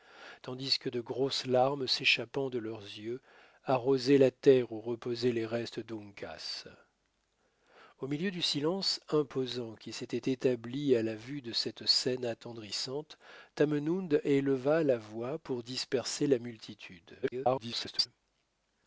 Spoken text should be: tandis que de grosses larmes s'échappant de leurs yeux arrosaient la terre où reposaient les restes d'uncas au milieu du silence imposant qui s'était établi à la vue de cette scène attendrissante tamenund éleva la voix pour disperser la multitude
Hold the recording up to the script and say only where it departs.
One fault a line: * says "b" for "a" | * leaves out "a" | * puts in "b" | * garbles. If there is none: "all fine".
* garbles